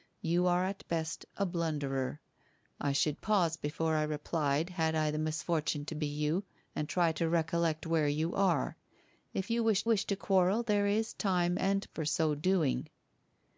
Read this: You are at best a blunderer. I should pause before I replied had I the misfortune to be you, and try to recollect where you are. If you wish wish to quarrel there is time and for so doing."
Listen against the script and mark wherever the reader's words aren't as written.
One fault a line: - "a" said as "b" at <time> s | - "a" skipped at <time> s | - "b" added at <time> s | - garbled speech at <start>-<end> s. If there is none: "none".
none